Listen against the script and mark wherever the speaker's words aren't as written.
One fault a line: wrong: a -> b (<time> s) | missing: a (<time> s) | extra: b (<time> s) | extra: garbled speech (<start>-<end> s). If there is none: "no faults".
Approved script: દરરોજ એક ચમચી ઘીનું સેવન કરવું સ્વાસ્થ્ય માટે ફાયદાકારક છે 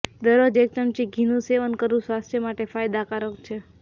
no faults